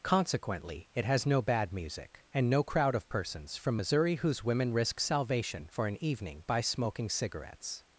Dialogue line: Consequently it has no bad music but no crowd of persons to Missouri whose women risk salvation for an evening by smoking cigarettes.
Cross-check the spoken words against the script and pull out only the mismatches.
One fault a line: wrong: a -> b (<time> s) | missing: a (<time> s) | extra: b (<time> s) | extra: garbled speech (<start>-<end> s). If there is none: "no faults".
wrong: but -> and (2.3 s)
wrong: to -> from (3.6 s)